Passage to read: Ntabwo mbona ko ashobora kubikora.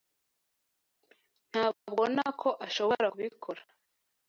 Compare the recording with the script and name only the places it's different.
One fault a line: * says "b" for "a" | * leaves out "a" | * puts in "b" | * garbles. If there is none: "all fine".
all fine